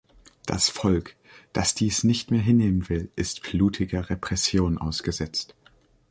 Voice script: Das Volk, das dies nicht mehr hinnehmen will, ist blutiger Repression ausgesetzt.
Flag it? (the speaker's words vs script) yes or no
no